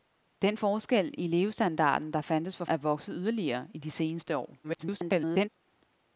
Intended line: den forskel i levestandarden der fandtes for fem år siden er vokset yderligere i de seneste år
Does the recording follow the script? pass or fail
fail